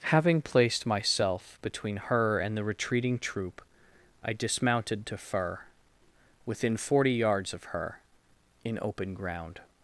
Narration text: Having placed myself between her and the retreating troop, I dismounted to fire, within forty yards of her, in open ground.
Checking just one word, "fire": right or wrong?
wrong